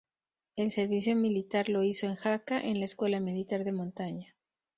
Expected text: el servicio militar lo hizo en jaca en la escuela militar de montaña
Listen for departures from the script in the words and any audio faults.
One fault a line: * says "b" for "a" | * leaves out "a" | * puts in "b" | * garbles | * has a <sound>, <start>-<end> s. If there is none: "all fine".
all fine